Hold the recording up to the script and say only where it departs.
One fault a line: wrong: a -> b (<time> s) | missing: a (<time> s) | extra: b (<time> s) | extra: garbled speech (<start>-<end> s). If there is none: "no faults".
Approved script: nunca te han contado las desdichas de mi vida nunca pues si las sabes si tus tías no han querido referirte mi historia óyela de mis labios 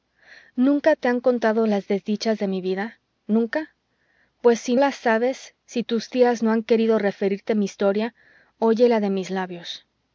no faults